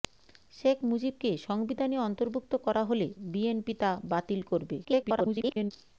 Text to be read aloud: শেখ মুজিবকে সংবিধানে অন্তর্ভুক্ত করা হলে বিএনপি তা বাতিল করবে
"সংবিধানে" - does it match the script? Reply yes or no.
yes